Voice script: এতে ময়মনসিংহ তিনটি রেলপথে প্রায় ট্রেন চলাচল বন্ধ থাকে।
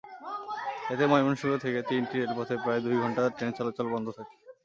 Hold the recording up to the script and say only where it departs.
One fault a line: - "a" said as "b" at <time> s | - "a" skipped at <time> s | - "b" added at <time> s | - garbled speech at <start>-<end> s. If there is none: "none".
- "থেকে" added at 1.6 s
- "দুই ঘণ্টা" added at 2.8 s